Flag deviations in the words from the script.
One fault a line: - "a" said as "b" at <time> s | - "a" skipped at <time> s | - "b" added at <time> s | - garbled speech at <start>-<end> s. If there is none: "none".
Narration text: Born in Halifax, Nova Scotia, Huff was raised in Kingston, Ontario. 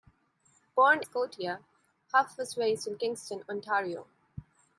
- "in Halifax Nova" skipped at 1.0 s